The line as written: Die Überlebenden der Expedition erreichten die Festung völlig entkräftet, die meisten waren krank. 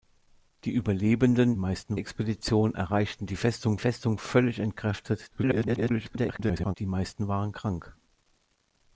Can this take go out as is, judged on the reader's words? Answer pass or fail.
fail